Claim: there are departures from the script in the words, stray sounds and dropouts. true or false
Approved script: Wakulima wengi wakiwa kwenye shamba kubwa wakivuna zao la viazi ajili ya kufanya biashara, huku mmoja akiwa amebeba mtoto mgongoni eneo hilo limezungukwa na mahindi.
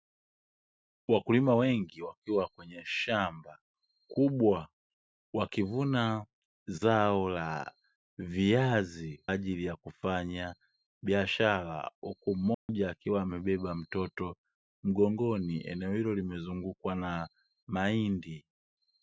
true